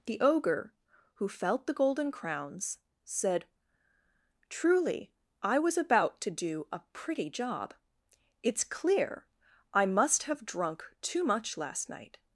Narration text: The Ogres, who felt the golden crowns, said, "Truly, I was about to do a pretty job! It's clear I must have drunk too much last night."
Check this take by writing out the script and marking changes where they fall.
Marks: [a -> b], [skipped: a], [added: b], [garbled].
The [Ogres, -> Ogre] who felt the golden crowns, said, "Truly, I was about to do a pretty job! It's clear I must have drunk too much last night."